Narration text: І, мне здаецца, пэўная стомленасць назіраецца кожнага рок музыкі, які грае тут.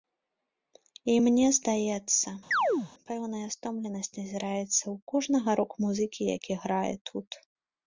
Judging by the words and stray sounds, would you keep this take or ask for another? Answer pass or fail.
fail